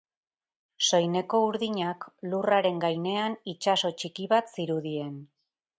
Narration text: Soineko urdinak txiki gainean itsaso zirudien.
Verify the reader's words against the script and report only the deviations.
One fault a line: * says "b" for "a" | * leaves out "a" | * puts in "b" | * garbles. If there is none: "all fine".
* says "lurraren" for "txiki"
* puts in "txiki bat"